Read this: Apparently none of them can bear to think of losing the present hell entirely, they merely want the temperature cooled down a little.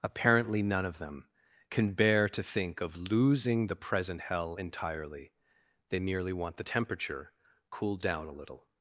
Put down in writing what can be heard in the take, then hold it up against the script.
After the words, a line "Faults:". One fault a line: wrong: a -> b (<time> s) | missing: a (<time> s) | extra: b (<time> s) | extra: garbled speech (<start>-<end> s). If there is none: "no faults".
Apparently none of them can bear to think of losing the present hell entirely, they merely want the temperature cooled down a little.
Faults:
no faults